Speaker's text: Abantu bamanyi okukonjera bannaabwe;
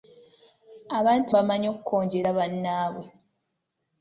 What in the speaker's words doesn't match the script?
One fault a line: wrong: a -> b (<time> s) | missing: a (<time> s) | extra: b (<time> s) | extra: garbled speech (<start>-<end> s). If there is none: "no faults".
no faults